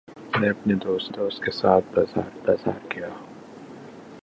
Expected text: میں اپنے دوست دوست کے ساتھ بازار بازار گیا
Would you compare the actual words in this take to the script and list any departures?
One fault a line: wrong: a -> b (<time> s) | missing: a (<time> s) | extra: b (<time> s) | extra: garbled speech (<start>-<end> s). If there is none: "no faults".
no faults